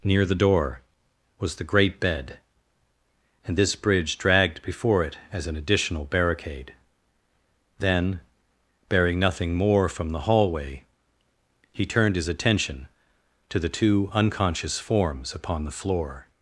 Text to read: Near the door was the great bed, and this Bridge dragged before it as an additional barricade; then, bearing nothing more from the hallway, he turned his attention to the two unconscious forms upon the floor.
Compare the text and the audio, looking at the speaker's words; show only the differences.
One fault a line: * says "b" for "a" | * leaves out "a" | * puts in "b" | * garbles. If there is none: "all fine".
all fine